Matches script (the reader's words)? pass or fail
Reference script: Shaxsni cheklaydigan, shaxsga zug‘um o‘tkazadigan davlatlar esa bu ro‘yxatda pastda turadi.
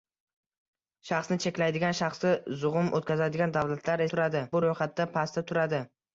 fail